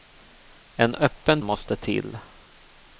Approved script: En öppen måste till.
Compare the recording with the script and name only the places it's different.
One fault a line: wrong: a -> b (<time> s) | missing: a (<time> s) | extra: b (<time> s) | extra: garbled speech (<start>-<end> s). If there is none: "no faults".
no faults